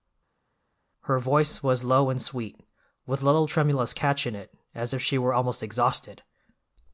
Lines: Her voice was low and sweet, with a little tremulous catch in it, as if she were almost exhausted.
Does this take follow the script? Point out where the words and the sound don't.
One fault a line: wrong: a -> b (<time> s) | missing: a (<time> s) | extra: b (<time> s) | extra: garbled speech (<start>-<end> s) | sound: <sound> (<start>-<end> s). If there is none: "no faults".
no faults